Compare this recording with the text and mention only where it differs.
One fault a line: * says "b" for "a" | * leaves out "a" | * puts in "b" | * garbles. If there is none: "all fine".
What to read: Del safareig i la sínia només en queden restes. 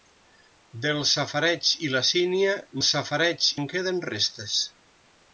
* says "safareig" for "només"